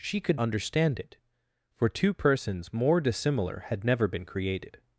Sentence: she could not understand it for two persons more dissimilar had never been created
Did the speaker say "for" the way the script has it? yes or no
yes